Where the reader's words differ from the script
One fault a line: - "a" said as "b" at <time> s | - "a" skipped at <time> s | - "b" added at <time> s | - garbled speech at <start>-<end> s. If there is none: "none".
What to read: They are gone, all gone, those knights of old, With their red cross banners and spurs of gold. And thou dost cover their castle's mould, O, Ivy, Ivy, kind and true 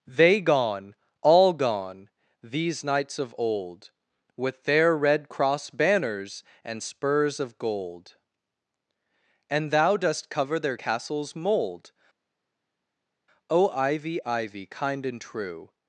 - "are" skipped at 0.4 s
- "those" said as "these" at 2.4 s